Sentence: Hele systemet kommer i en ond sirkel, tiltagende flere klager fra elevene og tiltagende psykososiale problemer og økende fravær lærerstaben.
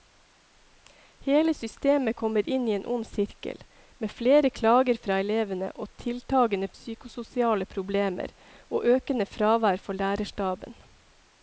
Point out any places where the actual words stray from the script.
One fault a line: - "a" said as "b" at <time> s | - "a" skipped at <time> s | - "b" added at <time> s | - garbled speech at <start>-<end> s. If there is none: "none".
- "inn" added at 2.6 s
- "tiltagende" said as "med" at 4.0 s
- "for" added at 9.9 s